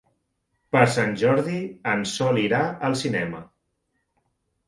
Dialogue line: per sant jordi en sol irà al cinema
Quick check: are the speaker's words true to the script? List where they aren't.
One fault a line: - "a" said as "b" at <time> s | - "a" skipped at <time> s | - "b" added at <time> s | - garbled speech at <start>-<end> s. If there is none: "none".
none